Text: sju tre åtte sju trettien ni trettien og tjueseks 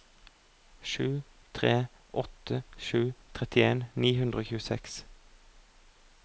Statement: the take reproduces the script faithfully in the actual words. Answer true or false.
false